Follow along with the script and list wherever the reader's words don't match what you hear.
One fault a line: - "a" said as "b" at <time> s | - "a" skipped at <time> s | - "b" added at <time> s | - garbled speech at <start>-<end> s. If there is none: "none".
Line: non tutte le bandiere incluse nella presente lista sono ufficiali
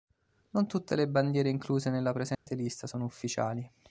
none